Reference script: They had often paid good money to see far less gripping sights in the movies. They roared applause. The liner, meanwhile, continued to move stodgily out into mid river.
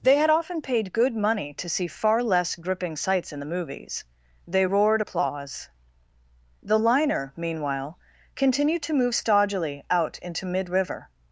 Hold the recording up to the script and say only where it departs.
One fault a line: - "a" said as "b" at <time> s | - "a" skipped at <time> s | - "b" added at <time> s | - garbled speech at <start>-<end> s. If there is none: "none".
none